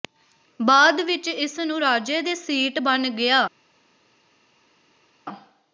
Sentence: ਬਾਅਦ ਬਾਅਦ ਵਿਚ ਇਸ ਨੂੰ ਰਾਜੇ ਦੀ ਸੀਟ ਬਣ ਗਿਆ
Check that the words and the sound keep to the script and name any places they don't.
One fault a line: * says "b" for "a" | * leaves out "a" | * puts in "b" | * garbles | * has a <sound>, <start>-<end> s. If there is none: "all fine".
* leaves out "ਬਾਅਦ"
* says "ਦੇ" for "ਦੀ"